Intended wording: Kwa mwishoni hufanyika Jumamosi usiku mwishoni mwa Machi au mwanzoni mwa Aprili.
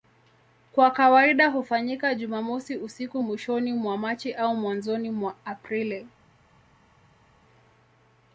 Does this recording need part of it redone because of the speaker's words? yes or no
yes